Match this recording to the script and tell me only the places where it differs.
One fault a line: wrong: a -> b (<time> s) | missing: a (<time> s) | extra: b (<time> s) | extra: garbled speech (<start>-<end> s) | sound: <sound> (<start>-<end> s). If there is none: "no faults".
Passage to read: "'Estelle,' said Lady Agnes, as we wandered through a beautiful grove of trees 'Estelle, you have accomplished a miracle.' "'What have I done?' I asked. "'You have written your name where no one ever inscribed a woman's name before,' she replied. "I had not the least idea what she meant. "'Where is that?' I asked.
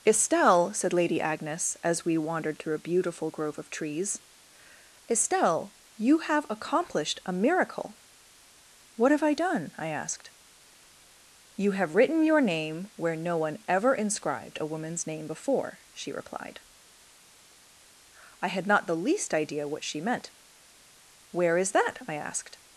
no faults